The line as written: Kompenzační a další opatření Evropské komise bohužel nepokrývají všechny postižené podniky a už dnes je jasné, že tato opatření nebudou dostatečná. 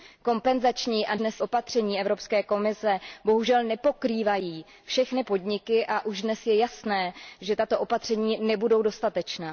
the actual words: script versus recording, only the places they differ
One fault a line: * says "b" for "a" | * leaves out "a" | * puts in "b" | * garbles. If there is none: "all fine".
* says "dnes" for "další"
* leaves out "postižené"